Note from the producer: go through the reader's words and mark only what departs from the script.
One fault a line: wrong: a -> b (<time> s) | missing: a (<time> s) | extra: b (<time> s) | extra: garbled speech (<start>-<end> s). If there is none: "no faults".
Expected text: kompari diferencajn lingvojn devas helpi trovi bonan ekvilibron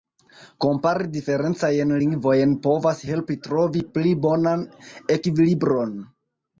wrong: devas -> povas (2.7 s)
extra: pli (4.0 s)